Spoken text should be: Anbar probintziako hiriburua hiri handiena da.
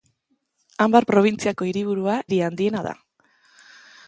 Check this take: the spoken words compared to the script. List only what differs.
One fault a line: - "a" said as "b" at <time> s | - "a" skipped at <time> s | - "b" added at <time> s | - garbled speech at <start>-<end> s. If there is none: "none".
none